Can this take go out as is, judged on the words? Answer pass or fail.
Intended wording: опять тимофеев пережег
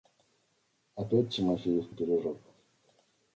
pass